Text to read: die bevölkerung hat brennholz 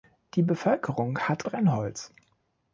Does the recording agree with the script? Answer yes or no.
yes